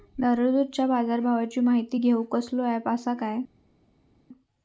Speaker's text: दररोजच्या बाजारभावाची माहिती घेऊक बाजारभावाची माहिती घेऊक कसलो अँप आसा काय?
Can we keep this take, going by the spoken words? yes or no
no